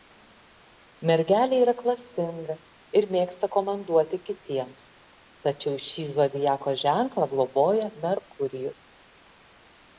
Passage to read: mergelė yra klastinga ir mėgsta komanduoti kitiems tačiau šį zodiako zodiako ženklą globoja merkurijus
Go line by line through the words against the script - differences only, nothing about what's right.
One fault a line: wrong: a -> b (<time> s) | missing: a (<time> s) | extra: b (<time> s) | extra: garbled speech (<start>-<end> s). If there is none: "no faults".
missing: zodiako (6.8 s)